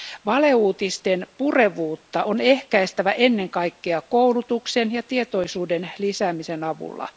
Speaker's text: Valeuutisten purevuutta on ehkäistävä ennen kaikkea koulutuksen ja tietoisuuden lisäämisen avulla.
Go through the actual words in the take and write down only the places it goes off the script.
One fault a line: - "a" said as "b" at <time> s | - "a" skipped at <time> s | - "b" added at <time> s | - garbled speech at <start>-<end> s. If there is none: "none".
none